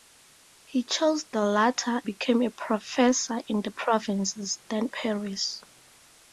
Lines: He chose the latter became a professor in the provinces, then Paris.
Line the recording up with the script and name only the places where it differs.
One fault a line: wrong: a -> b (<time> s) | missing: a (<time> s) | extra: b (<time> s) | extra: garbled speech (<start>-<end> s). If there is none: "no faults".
no faults